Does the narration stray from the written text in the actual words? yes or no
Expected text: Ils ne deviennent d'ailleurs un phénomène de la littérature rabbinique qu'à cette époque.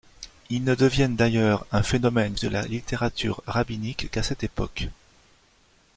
no